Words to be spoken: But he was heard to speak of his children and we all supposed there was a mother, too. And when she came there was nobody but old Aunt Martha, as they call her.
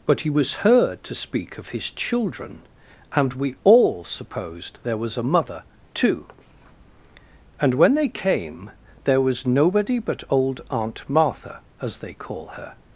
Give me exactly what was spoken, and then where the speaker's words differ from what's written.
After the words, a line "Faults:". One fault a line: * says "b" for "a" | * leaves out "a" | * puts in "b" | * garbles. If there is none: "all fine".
But he was heard to speak of his children and we all supposed there was a mother, too. And when they came there was nobody but old Aunt Martha, as they call her.
Faults:
* says "they" for "she"